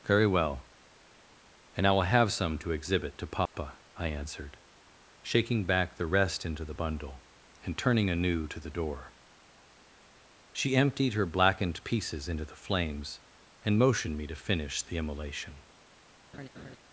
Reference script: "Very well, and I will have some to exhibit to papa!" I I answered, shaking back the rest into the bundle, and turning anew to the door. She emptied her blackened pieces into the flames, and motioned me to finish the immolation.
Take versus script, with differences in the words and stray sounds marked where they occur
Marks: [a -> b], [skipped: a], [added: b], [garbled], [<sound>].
"Very well, and I will have some to exhibit to papa!" [dropout] I [skipped: I] answered, shaking back the rest into the bundle, and turning anew to the door. She emptied her blackened pieces into the flames, and motioned me to finish the immolation. [laugh]